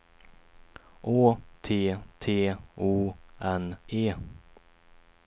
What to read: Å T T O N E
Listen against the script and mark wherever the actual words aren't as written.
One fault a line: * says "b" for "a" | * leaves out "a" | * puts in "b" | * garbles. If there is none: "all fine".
all fine